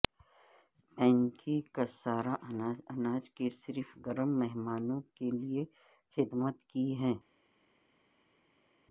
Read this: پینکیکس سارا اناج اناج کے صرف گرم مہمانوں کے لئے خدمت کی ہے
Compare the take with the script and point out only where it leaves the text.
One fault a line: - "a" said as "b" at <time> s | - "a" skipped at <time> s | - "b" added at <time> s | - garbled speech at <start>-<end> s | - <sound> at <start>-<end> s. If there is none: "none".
none